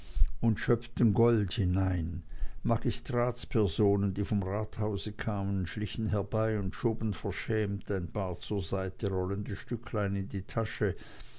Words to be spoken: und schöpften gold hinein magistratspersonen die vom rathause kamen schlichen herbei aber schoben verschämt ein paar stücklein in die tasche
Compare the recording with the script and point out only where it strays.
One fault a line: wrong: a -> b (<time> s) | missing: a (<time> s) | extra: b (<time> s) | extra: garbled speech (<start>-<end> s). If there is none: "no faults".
wrong: aber -> und (6.6 s)
extra: zur seite rollende (8.4 s)